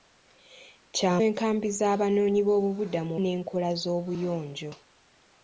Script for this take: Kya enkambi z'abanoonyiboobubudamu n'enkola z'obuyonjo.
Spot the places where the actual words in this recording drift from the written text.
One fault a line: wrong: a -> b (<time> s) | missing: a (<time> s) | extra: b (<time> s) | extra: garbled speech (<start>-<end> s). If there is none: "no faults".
no faults